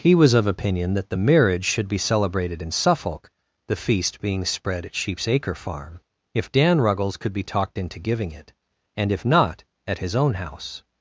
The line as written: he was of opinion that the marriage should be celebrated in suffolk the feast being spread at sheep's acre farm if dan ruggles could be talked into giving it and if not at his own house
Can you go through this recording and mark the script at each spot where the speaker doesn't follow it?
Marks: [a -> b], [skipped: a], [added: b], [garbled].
he was of opinion that the marriage should be celebrated in suffolk the feast being spread at sheep's acre farm if dan ruggles could be talked into giving it and if not at his own house